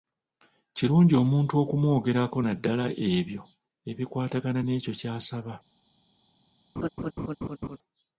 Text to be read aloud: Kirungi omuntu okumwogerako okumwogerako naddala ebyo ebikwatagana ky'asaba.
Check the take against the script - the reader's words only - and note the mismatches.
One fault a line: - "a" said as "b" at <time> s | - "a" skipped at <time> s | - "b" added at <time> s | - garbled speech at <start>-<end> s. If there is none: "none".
- "okumwogerako" skipped at 2.4 s
- "n'ekyo" added at 4.6 s